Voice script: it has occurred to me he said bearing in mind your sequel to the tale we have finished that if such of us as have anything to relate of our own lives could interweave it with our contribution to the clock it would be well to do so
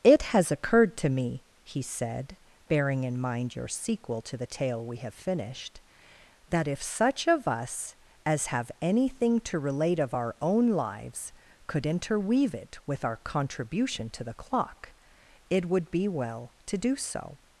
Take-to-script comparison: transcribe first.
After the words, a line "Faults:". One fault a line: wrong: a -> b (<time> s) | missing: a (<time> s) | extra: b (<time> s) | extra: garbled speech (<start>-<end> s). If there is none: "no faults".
it has occurred to me he said bearing in mind your sequel to the tale we have finished that if such of us as have anything to relate of our own lives could interweave it with our contribution to the clock it would be well to do so
Faults:
no faults